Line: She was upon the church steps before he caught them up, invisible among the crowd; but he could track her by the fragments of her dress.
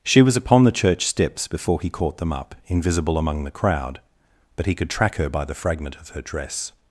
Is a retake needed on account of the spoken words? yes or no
yes